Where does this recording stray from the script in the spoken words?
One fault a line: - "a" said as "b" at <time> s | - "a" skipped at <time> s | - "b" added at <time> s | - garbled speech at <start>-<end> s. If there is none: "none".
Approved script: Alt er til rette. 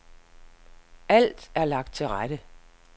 - "lagt" added at 1.6 s